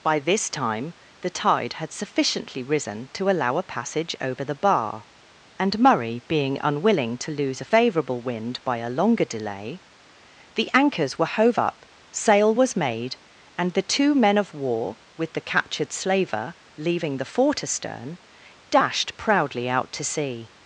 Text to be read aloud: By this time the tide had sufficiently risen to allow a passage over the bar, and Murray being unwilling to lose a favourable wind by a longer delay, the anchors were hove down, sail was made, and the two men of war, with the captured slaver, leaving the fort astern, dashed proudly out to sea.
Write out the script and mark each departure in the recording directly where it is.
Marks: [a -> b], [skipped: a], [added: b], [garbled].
By this time the tide had sufficiently risen to allow a passage over the bar, and Murray being unwilling to lose a favourable wind by a longer delay, the anchors were hove [down, -> up] sail was made, and the two men of war, with the captured slaver, leaving the fort astern, dashed proudly out to sea.